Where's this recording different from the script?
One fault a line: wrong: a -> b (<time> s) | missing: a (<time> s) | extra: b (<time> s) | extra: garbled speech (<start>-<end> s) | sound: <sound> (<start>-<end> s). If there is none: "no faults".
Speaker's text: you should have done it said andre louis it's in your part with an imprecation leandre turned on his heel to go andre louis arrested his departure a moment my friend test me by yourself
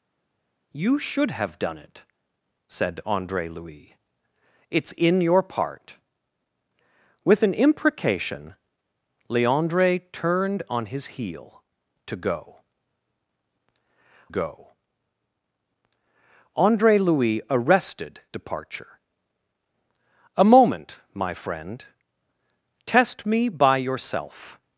extra: go (14.3 s)
missing: his (18.2 s)